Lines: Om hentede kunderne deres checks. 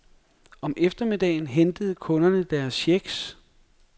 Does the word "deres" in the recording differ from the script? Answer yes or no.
no